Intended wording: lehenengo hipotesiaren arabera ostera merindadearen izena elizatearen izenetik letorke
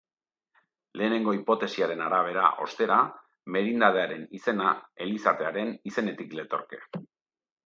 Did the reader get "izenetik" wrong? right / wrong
right